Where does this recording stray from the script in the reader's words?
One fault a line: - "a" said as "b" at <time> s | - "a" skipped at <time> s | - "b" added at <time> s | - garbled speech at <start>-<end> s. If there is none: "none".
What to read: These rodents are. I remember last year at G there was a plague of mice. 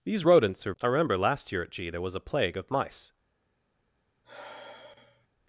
none